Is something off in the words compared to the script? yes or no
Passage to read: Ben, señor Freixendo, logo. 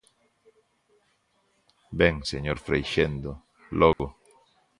no